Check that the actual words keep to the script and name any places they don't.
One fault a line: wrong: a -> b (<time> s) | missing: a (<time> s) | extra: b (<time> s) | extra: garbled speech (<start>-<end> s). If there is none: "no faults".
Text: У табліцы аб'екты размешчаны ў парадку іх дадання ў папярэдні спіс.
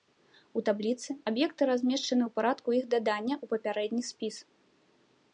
no faults